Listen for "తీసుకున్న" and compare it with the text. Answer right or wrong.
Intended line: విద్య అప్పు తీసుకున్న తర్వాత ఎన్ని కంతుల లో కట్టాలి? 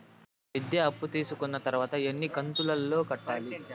right